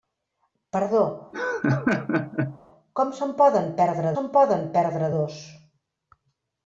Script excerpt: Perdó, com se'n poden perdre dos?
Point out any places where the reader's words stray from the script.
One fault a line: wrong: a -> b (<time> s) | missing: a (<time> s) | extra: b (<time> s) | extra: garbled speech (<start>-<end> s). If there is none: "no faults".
extra: se'n poden perdre (4.2 s)